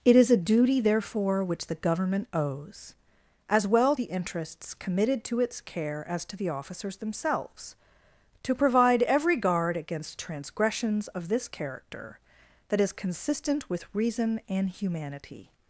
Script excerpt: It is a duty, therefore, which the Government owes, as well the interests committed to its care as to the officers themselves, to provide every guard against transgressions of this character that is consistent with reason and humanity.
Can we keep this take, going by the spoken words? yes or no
yes